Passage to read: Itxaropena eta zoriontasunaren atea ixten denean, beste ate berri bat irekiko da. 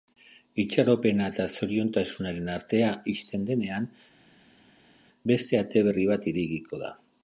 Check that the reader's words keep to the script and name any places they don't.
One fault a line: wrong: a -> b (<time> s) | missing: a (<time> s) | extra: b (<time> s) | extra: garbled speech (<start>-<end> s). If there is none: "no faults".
no faults